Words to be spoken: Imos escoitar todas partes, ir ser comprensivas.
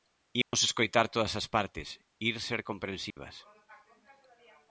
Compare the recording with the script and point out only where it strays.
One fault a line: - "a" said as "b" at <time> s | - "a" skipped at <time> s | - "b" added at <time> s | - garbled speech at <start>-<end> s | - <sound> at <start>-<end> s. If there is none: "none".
- dropout at 0.4-0.5 s
- "as" added at 1.4 s
- dropout at 3.1-3.2 s